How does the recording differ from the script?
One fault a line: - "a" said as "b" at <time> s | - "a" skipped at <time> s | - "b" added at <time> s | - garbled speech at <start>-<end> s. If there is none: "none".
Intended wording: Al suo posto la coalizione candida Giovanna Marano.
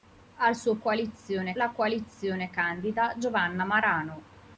- "posto" said as "coalizione" at 0.8 s